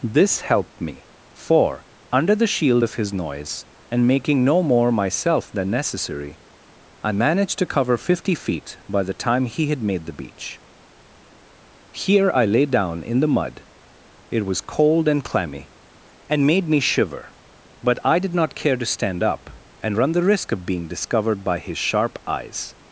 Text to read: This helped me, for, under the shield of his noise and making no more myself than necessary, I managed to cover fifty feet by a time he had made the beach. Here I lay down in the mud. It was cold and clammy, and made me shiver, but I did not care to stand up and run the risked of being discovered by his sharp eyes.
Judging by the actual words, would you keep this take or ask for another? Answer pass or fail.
fail